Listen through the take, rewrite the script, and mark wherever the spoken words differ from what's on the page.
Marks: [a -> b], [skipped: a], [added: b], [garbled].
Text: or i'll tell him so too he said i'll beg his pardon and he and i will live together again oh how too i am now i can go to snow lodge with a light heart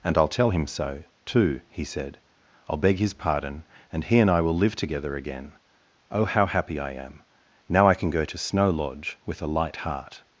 [or -> and] i'll tell him so too he said i'll beg his pardon and he and i will live together again oh how [too -> happy] i am now i can go to snow lodge with a light heart